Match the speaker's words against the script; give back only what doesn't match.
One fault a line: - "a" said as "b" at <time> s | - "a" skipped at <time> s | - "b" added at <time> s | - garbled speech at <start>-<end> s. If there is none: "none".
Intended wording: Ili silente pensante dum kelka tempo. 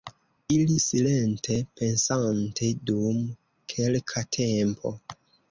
none